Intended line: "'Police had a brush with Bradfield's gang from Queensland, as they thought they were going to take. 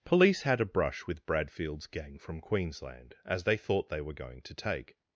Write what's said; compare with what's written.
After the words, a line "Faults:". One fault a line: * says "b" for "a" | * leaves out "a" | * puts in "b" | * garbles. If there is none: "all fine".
"'Police had a brush with Bradfield's gang from Queensland, as they thought they were going to take.
Faults:
all fine